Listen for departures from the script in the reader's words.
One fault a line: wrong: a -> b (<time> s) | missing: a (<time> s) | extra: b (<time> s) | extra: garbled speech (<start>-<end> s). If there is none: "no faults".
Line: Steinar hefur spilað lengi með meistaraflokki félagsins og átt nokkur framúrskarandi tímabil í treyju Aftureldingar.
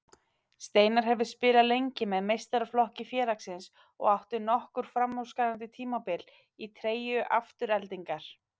no faults